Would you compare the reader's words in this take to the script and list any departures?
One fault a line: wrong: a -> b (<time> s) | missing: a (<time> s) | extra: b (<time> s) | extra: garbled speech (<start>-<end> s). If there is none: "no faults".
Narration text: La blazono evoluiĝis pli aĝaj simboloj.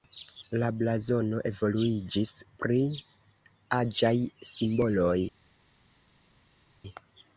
no faults